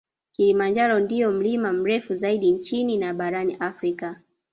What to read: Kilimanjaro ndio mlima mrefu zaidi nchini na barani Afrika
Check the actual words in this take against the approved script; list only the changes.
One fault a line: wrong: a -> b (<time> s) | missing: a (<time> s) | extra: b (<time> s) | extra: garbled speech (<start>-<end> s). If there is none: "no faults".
no faults